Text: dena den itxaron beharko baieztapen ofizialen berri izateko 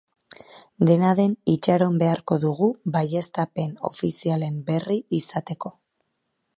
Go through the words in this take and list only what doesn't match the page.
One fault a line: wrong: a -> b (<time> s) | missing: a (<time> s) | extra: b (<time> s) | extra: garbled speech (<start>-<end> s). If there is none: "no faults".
extra: dugu (2.4 s)